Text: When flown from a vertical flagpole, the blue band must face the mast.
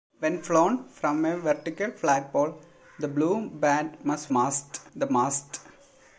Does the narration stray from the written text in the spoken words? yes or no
yes